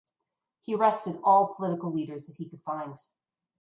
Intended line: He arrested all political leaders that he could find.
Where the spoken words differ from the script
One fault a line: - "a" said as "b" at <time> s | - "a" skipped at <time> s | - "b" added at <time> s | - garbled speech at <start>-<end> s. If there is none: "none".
none